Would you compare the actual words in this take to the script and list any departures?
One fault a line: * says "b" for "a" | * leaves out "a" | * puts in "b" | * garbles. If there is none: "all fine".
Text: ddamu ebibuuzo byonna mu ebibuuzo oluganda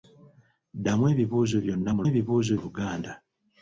all fine